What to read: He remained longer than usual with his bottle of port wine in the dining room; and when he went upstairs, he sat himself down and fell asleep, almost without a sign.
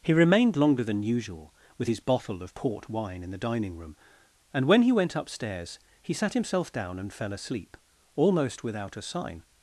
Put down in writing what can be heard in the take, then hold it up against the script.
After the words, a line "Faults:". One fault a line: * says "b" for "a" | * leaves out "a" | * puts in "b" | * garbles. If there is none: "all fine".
He remained longer than usual with his bottle of port wine in the dining room; and when he went upstairs, he sat himself down and fell asleep, almost without a sign.
Faults:
all fine